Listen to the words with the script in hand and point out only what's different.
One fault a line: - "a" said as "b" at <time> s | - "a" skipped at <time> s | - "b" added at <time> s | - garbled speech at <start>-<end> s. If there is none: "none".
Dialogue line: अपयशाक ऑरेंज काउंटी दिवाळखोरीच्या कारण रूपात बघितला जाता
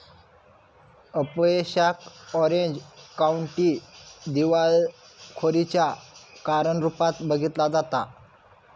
none